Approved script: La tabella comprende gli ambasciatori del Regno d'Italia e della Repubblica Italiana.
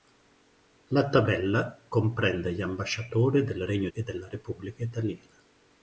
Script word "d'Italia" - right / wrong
wrong